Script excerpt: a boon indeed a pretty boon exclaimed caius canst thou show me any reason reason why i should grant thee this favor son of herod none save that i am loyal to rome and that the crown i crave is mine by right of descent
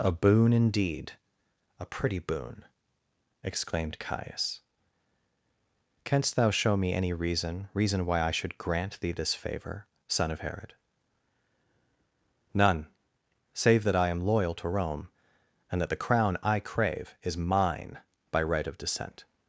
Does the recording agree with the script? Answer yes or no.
yes